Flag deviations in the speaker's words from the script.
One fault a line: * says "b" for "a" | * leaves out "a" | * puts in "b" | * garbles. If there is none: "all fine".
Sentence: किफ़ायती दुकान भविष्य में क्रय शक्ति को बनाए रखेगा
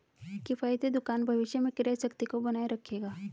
all fine